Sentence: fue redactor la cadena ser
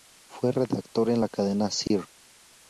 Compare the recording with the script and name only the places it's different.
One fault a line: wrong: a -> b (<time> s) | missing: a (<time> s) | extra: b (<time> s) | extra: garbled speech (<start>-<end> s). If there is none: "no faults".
extra: en (1.1 s)